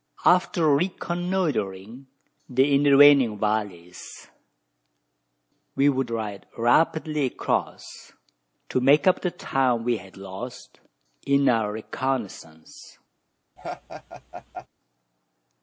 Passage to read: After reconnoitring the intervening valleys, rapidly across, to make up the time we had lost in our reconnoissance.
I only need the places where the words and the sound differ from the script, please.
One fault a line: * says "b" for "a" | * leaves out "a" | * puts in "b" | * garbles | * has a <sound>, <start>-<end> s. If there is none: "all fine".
* puts in "we would ride"
* has a laugh, 13.6-14.7 s